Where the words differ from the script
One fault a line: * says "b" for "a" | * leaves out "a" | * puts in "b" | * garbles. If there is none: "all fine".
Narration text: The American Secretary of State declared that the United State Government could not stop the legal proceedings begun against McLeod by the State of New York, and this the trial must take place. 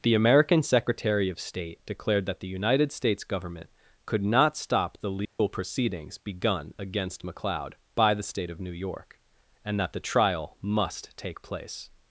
* says "States" for "State"
* says "that" for "this"